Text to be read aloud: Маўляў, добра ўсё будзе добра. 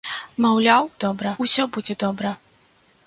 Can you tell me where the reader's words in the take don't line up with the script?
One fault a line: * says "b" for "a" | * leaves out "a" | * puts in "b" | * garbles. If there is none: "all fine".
all fine